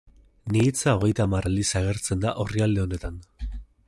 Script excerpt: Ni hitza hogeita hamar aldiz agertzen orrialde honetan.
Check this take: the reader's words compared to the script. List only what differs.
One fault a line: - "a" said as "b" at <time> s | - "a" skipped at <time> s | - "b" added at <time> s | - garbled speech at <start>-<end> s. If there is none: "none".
- "da" added at 2.3 s